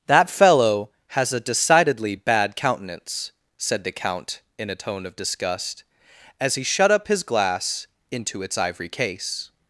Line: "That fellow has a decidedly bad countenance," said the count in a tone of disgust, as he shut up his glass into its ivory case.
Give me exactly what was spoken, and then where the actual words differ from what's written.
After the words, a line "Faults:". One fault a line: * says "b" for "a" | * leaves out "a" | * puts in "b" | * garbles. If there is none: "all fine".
"That fellow has a decidedly bad countenance," said the count in a tone of disgust, as he shut up his glass into its ivory case.
Faults:
all fine